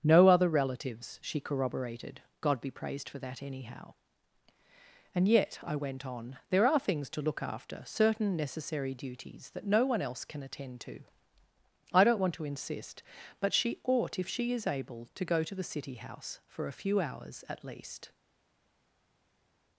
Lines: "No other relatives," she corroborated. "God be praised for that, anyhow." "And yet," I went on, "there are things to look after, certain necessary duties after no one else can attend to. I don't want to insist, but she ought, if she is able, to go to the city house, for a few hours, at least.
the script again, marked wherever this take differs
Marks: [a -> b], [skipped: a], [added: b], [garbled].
"No other relatives," she corroborated. "God be praised for that, anyhow." "And yet," I went on, "there are things to look after, certain necessary duties [after -> that] no one else can attend to. I don't want to insist, but she ought, if she is able, to go to the city house, for a few hours, at least.